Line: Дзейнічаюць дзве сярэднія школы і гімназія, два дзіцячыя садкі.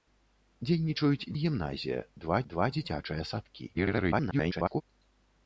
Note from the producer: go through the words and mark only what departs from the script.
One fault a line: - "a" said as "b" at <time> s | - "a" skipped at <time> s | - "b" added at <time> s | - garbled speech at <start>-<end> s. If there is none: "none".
- "дзве сярэднія школы" skipped at 1.3 s
- "два" added at 2.5 s
- garbled speech at 3.7-4.8 s